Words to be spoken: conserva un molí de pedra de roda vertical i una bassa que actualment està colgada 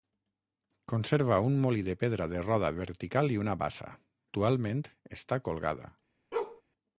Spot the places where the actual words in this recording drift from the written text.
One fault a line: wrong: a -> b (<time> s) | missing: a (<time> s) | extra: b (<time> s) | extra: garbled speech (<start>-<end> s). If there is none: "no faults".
missing: que (3.9 s)